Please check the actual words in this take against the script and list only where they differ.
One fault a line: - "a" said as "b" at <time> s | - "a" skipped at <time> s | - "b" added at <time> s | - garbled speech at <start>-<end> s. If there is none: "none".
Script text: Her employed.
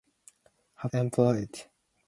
none